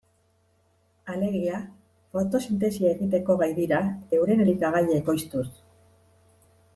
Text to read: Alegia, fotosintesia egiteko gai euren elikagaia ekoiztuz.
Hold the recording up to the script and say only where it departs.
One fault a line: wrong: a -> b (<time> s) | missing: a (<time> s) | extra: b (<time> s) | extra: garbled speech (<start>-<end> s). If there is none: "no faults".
extra: dira (3.6 s)